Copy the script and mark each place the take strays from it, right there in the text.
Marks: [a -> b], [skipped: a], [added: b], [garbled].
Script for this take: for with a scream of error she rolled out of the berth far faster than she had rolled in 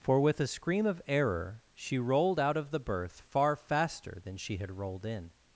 for with a scream of error she rolled out of the berth far faster than she had rolled in